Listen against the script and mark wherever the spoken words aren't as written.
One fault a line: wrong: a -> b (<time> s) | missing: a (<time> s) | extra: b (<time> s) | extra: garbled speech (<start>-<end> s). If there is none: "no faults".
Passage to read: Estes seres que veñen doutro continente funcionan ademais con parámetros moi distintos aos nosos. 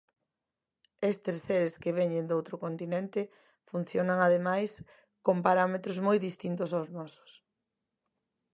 no faults